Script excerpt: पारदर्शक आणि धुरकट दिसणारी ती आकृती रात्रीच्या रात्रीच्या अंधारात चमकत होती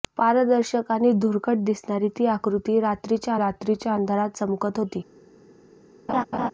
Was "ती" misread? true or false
false